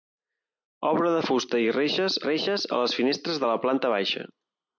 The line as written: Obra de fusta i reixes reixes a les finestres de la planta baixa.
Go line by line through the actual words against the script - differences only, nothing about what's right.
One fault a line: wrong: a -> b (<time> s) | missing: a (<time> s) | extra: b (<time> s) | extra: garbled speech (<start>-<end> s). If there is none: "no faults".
no faults